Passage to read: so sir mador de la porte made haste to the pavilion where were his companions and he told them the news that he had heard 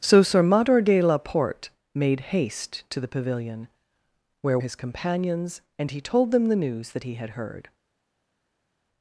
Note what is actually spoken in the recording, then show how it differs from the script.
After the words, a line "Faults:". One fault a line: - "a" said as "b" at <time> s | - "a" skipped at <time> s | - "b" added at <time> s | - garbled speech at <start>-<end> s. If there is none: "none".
so sir mador de la porte made haste to the pavilion where his companions and he told them the news that he had heard
Faults:
- "were" skipped at 4.6 s